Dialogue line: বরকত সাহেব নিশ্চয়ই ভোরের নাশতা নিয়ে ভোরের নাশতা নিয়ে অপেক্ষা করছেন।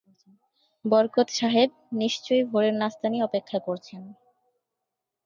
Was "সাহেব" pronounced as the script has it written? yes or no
yes